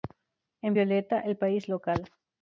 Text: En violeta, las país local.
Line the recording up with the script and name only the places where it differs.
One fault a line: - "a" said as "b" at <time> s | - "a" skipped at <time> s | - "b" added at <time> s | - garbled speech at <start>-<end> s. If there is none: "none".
- "las" said as "el" at 1.2 s